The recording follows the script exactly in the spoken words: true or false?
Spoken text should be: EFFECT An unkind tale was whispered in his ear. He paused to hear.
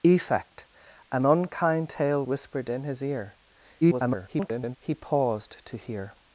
false